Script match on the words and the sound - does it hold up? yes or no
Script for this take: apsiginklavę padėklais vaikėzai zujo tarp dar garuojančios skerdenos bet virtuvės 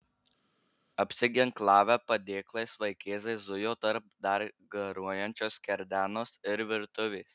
no